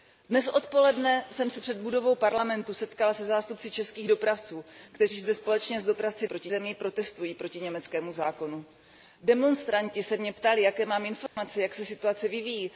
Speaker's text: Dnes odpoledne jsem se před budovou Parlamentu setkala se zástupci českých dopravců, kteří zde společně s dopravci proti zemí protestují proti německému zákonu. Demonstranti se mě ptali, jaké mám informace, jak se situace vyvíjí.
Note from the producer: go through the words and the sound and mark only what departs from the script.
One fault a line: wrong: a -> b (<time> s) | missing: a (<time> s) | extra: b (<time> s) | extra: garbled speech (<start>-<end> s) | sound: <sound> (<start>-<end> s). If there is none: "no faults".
sound: dropout (11.3-11.4 s)